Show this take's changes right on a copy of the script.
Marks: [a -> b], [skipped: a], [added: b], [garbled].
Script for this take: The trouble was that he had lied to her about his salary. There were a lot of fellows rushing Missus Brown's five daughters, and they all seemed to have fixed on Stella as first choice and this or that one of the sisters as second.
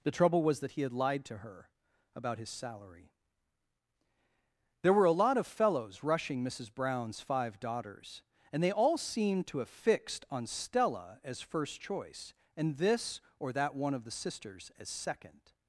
The trouble was that he had lied to her about his salary. There were a lot of fellows rushing Missus Brown's five daughters, and they all seemed to have fixed on Stella as first choice and this or that one of the sisters as second.